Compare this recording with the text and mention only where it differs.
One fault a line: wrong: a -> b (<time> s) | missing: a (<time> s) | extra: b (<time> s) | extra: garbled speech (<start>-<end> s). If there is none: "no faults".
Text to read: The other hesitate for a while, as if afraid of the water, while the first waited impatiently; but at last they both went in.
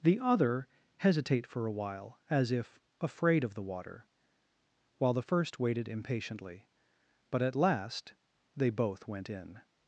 no faults